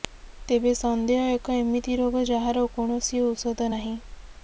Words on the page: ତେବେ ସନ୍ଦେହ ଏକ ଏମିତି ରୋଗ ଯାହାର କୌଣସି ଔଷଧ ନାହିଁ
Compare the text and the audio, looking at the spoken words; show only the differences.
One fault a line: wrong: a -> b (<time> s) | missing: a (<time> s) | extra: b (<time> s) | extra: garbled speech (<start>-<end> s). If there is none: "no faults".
no faults